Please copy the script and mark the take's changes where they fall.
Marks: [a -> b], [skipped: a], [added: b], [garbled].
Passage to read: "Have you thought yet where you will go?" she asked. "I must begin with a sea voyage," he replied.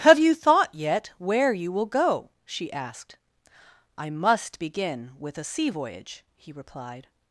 "Have you thought yet where you will go?" she asked. "I must begin with a sea voyage," he replied.